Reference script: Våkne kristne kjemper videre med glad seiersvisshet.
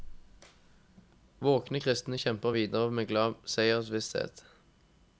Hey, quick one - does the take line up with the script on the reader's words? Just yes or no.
yes